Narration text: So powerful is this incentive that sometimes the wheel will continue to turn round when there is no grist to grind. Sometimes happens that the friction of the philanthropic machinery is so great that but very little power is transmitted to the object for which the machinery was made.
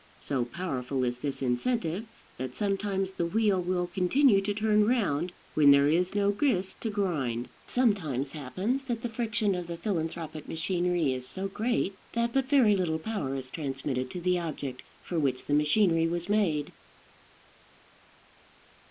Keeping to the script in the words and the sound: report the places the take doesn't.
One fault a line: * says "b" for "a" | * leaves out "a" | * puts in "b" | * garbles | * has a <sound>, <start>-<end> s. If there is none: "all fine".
all fine